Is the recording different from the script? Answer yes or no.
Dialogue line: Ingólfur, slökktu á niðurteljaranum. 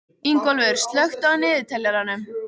no